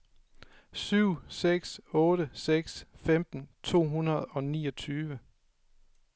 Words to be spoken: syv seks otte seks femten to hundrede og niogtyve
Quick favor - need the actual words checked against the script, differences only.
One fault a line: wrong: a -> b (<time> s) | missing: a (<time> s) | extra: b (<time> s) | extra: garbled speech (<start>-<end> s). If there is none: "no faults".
no faults